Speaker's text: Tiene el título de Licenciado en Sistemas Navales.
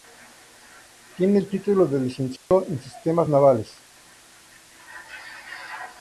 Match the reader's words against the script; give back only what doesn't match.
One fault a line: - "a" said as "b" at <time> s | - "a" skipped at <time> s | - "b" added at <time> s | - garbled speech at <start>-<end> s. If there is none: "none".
none